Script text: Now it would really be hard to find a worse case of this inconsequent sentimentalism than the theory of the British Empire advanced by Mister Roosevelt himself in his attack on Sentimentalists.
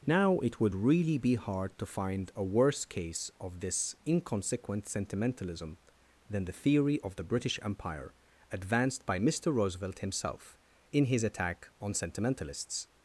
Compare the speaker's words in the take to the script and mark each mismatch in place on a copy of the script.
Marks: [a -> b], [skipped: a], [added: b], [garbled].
Now it would really be hard to find a worse case of this inconsequent sentimentalism than the theory of the British Empire advanced by Mister Roosevelt himself in his attack on Sentimentalists.